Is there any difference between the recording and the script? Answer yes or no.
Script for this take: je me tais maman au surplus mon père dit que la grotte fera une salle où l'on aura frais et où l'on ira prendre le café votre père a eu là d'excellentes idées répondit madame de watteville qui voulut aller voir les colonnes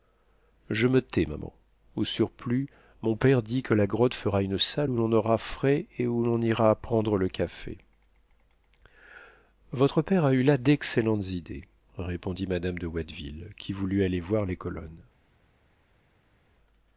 no